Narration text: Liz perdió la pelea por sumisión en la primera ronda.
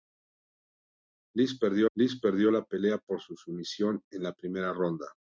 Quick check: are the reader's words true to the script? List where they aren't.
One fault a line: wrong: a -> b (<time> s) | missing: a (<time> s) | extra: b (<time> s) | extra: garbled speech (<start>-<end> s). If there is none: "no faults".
extra: liz perdió (2.0 s)